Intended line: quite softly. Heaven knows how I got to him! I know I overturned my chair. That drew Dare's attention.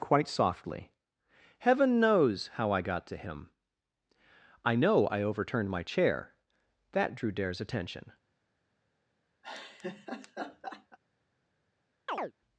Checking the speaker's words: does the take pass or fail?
pass